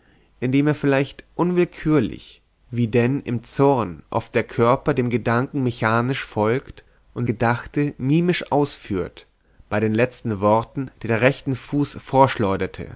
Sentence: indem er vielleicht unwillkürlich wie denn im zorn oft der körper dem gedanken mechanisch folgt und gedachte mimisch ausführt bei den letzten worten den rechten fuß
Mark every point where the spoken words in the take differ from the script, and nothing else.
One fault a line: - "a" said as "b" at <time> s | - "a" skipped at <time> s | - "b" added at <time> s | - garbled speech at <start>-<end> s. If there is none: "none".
none